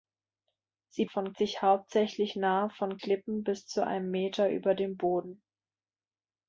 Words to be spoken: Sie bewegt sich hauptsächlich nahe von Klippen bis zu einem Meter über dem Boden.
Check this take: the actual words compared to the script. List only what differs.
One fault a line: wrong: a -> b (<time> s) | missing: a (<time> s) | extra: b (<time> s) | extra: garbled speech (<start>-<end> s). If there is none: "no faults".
wrong: bewegt -> von (1.1 s)